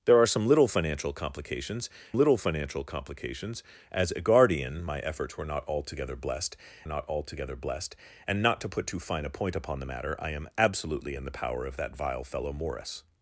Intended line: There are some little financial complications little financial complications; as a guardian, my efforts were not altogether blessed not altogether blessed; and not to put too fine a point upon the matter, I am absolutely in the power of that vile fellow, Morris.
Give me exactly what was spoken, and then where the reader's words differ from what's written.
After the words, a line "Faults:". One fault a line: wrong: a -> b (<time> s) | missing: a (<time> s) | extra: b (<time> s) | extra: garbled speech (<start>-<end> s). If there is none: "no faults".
There are some little financial complications little financial complications; as a guardian, my efforts were not altogether blessed not altogether blessed; and not to put too fine a point upon the matter, I am absolutely in the power of that vile fellow, Morris.
Faults:
no faults